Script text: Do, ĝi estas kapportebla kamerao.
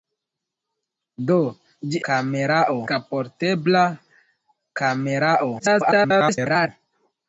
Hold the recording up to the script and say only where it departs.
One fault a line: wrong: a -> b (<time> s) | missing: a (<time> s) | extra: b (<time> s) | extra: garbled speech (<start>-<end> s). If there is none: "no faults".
wrong: estas -> kamerao (2.1 s)
extra: garbled speech (5.6-6.7 s)